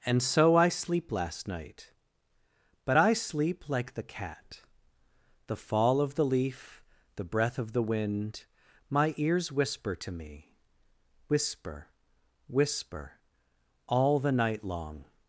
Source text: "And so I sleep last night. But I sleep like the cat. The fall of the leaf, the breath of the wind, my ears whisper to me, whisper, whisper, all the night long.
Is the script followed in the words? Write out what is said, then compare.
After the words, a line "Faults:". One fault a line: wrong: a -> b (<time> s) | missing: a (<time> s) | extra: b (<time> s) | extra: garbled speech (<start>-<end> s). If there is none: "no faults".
"And so I sleep last night. But I sleep like the cat. The fall of the leaf, the breath of the wind, my ears whisper to me, whisper, whisper, all the night long.
Faults:
no faults